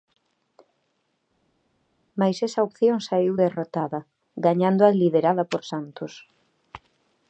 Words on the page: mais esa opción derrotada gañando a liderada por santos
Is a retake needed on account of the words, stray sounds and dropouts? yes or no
yes